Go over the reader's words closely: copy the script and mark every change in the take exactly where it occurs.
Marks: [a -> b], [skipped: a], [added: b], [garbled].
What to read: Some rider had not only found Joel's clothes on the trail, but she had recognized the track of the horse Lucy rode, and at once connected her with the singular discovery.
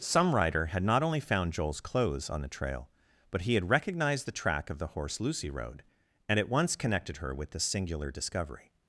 Some rider had not only found Joel's clothes on the trail, but [she -> he] had recognized the track of the horse Lucy rode, and at once connected her with the singular discovery.